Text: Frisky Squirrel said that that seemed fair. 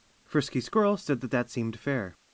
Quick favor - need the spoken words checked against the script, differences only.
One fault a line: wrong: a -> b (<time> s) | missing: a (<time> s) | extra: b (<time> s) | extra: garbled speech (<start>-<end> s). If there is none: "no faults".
no faults